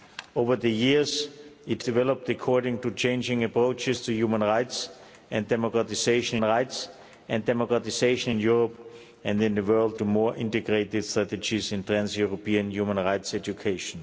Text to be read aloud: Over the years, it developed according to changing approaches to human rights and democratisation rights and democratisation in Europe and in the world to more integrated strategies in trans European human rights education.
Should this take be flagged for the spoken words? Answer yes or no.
no